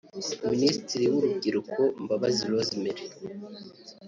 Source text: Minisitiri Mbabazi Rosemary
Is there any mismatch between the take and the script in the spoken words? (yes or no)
yes